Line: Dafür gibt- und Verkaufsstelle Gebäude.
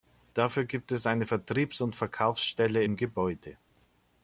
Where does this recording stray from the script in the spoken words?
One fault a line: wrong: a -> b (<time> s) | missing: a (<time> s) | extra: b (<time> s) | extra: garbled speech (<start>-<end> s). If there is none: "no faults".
extra: es eine Vertriebs (0.9 s)
extra: im (2.8 s)